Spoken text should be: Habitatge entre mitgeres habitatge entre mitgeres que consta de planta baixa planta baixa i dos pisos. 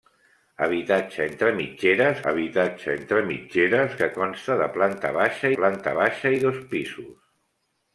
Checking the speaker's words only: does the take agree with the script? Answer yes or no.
yes